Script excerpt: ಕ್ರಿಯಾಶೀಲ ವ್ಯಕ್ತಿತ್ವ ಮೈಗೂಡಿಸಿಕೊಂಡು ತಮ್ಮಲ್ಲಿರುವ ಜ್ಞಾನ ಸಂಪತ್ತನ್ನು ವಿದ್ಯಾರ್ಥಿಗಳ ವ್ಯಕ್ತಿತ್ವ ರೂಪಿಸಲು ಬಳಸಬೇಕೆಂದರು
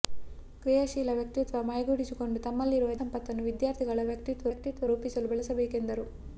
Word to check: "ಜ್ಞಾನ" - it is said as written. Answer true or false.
false